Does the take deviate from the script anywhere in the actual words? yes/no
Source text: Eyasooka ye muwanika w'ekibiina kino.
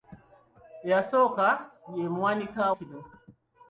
yes